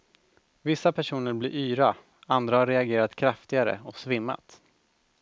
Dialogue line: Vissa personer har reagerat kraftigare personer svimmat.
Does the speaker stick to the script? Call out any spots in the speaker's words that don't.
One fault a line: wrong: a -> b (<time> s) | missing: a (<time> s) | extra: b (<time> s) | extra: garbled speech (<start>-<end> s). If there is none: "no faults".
extra: blir yra andra (1.3 s)
wrong: personer -> och (3.8 s)